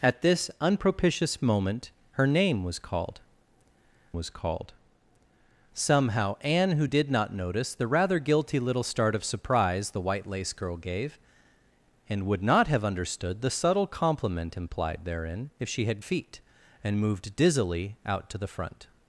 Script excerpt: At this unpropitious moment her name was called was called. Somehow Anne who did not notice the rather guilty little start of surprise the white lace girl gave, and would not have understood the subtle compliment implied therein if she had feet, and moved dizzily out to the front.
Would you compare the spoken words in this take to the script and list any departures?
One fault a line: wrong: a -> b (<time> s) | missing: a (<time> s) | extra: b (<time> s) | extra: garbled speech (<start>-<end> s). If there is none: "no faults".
no faults